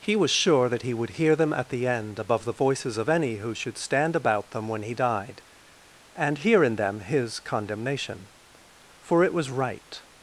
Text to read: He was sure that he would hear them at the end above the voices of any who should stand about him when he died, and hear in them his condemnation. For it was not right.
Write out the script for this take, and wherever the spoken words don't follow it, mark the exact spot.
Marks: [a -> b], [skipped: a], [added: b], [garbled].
He was sure that he would hear them at the end above the voices of any who should stand about [him -> them] when he died, and hear in them his condemnation. For it was [skipped: not] right.